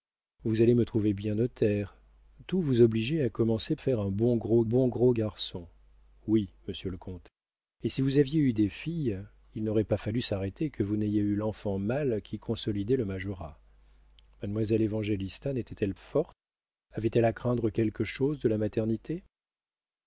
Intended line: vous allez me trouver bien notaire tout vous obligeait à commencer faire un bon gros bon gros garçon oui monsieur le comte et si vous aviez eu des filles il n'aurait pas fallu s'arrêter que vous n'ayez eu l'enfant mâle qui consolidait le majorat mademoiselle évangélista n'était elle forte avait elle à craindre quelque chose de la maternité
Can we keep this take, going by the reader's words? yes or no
yes